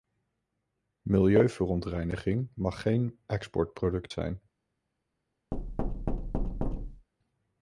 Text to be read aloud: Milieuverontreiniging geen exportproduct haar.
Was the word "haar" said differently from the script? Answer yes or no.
yes